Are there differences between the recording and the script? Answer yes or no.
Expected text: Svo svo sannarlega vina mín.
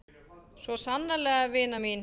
yes